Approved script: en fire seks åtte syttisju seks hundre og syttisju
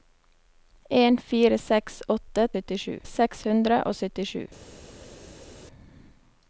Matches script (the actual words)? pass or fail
pass